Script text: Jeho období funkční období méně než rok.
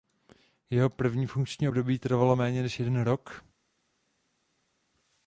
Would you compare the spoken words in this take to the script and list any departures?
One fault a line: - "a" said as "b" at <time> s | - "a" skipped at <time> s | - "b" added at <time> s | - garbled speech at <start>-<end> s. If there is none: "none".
- "období" said as "první" at 0.9 s
- "trvalo" added at 2.0 s
- "jeden" added at 2.8 s